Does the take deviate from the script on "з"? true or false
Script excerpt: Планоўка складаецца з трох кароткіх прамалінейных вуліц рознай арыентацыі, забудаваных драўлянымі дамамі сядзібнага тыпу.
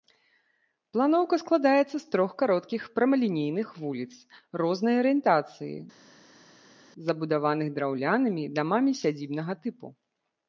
false